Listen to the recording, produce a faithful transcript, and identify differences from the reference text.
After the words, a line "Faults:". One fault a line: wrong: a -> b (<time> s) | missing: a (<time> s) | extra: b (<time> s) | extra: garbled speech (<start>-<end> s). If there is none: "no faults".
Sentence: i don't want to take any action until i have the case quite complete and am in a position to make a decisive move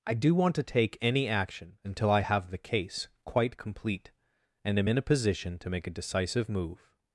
i do want to take any action until i have the case quite complete and am in a position to make a decisive move
Faults:
wrong: don't -> do (0.1 s)